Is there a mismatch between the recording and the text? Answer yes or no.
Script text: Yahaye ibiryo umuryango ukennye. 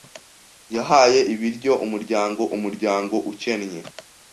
yes